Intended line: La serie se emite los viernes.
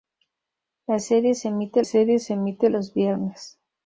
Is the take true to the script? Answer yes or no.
no